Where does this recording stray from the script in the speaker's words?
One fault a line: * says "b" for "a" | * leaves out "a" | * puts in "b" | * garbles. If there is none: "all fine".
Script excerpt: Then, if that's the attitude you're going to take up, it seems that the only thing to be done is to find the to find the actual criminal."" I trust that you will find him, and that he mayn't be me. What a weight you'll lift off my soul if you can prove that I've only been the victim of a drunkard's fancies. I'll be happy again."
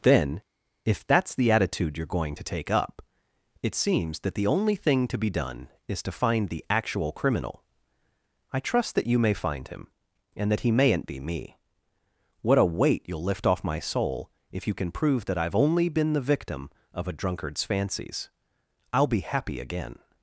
* leaves out "to find the"
* says "may" for "will"